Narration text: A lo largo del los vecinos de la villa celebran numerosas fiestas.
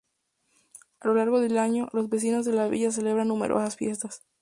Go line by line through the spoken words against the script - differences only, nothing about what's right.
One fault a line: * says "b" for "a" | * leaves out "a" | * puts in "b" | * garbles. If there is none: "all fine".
* puts in "año"